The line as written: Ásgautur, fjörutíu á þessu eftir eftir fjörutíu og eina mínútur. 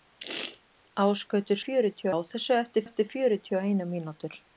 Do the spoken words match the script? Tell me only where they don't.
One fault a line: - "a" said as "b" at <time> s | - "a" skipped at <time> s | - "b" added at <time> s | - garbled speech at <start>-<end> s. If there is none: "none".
none